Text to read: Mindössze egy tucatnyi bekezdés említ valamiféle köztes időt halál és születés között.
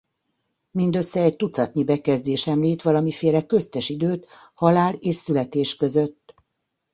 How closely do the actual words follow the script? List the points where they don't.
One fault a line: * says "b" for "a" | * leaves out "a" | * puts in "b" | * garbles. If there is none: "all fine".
all fine